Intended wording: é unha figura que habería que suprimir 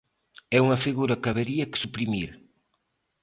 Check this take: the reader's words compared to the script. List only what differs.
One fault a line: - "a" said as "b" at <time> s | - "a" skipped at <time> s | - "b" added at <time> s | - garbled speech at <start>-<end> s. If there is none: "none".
none